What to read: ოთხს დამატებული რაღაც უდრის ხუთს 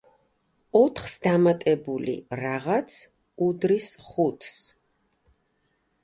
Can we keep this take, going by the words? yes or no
yes